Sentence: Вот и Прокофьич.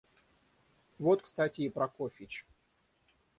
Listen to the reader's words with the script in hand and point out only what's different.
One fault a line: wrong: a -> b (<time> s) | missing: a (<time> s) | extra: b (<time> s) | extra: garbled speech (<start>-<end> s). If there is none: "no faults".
extra: кстати (1.2 s)